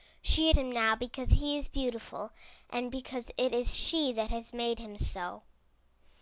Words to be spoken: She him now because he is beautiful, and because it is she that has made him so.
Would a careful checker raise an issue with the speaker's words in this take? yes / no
no